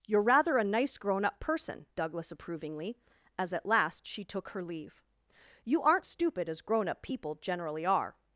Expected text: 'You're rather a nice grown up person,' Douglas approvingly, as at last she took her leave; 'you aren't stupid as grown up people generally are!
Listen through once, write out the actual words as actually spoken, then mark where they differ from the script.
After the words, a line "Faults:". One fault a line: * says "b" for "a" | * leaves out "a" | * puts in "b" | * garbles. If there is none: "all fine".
'You're rather a nice grown up person,' Douglas approvingly, as at last she took her leave; 'you aren't stupid as grown up people generally are!
Faults:
all fine